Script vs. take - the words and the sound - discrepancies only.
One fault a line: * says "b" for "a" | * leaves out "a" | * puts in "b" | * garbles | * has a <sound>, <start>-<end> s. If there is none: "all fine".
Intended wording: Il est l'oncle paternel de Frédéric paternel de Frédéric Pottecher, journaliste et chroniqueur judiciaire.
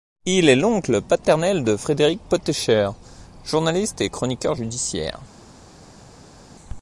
* leaves out "paternel de Frédéric"